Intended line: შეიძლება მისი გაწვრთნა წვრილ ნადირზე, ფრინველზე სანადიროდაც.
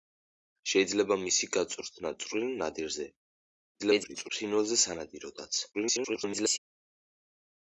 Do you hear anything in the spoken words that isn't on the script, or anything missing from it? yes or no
yes